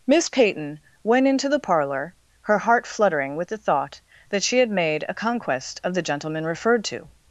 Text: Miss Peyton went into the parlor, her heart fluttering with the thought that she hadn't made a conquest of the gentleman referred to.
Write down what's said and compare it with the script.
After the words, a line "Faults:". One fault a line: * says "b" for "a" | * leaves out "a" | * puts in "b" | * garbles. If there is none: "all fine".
Miss Peyton went into the parlor, her heart fluttering with the thought that she had made a conquest of the gentleman referred to.
Faults:
* says "had" for "hadn't"